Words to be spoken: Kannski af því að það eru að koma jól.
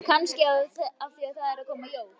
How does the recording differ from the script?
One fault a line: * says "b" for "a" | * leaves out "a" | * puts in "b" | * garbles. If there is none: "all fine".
all fine